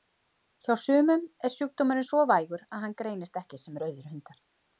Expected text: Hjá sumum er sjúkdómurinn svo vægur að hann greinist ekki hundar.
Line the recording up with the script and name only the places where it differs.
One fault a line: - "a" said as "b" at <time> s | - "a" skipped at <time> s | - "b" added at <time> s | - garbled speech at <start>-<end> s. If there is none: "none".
- "sem rauðir" added at 3.6 s